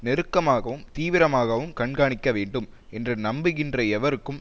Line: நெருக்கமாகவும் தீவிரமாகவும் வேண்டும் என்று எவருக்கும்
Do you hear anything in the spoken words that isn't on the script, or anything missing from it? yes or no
yes